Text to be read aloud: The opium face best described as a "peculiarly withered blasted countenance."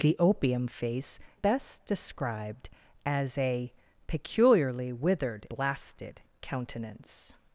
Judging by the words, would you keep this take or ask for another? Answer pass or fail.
pass